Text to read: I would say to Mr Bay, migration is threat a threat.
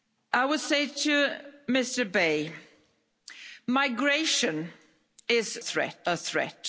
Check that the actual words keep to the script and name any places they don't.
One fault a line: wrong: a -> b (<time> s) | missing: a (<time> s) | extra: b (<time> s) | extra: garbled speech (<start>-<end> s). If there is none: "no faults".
no faults